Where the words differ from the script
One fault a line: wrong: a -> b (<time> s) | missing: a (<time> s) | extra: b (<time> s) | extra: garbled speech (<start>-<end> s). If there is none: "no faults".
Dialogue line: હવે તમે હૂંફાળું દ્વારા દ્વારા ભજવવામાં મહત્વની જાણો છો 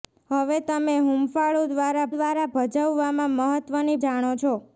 no faults